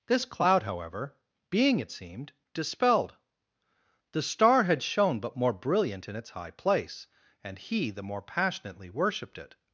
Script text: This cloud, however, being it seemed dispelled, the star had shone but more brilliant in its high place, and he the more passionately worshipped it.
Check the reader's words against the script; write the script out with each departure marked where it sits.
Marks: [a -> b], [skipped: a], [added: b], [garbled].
This cloud, however, being it seemed dispelled, the star had shone but more brilliant in its high place, and he the more passionately worshipped it.